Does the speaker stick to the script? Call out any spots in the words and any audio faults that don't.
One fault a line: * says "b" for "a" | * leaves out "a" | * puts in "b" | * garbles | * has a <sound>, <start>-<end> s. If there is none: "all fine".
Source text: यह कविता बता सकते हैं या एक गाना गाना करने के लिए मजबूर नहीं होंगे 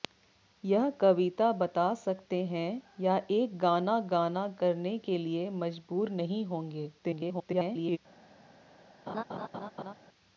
* garbles
* has a laugh, 9.1-9.9 s